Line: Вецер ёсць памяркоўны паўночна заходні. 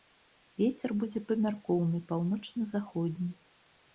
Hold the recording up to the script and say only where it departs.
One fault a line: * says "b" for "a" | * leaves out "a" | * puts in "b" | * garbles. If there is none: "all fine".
* says "будзе" for "ёсць"